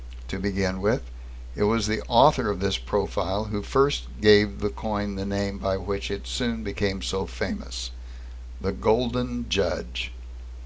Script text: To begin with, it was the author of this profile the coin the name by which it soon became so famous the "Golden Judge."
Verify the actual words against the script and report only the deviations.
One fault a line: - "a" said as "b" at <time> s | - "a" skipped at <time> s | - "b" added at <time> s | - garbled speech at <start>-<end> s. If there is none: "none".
- "who first gave" added at 3.5 s